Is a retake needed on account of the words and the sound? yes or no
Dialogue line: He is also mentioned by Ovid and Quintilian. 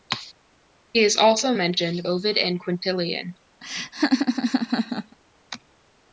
yes